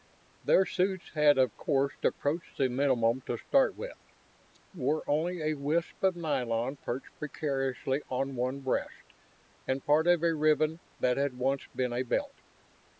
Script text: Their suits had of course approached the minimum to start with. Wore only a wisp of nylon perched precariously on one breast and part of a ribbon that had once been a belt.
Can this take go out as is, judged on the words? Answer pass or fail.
pass